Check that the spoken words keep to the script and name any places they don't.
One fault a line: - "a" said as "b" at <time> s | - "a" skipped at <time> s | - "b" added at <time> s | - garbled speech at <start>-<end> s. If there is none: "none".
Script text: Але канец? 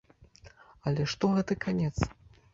- "што гэты" added at 1.1 s